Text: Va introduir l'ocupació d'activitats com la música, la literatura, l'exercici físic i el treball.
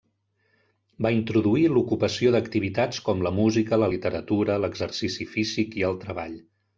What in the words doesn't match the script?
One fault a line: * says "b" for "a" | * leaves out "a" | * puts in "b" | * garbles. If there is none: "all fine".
all fine